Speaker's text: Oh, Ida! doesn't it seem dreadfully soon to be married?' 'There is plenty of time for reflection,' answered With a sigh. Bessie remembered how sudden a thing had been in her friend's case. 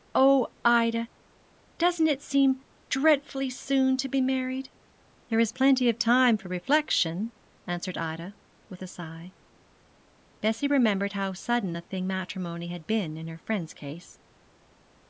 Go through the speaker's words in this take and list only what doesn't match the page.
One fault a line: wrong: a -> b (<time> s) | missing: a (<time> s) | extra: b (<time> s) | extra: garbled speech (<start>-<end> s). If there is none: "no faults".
extra: Ida (8.0 s)
extra: matrimony (12.1 s)